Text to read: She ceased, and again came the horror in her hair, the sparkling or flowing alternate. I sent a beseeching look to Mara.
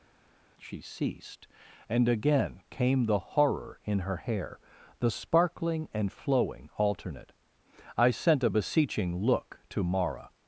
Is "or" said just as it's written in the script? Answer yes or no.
no